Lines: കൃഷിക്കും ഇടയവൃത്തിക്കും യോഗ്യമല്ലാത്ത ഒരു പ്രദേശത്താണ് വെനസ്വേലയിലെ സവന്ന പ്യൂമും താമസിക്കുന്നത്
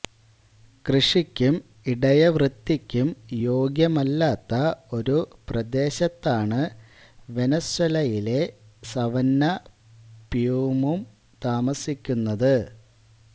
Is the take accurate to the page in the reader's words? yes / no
yes